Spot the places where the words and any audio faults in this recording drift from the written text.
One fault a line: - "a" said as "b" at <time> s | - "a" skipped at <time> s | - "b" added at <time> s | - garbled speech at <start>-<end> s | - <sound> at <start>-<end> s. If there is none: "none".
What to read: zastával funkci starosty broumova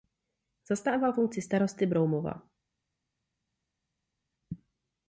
none